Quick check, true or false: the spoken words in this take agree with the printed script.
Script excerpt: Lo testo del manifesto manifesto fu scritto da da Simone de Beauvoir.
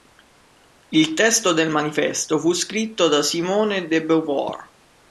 false